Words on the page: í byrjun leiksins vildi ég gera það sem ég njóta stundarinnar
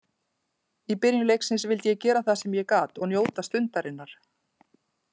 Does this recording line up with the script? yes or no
no